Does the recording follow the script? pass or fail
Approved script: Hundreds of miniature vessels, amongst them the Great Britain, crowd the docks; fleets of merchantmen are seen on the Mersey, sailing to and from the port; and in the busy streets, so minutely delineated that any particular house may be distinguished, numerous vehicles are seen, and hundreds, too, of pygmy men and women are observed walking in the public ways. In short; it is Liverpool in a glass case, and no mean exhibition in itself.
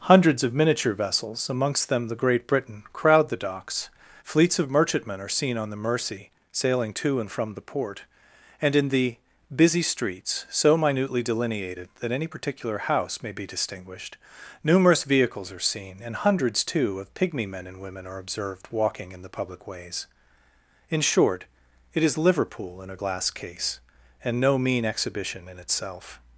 pass